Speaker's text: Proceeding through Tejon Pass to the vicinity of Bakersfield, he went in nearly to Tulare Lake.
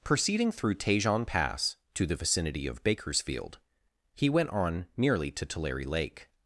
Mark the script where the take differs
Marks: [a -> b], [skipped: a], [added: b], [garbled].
Proceeding through Tejon Pass to the vicinity of Bakersfield, he went [in -> on] nearly to Tulare Lake.